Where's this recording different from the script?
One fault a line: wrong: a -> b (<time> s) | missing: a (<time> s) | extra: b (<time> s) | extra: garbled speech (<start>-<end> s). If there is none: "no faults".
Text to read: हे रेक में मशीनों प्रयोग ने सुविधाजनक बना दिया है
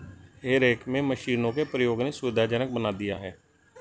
extra: के (1.5 s)